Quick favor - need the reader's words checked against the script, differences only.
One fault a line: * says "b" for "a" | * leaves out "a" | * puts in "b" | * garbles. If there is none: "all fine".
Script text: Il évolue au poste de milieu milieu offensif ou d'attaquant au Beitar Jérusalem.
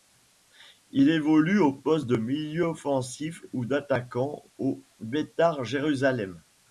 * leaves out "milieu"